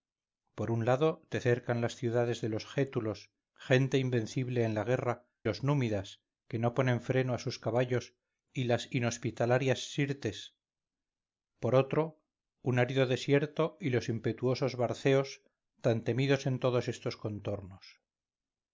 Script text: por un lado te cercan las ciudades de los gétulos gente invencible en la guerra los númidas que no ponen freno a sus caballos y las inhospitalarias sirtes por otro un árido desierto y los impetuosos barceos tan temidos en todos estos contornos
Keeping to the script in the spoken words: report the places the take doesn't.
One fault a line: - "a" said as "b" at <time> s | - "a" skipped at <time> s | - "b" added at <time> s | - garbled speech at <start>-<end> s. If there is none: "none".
none